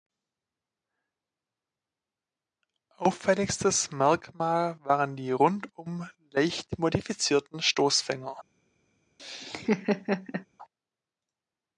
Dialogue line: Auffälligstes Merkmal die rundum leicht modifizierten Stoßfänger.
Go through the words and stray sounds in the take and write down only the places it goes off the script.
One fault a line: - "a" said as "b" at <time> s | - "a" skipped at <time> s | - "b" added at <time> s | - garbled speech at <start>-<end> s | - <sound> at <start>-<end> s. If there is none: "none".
- "waren" added at 4.8 s
- laugh at 9.2-10.5 s